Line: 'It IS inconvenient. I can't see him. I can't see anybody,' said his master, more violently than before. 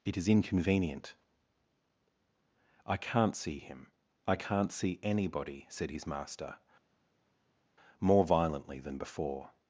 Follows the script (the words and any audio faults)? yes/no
yes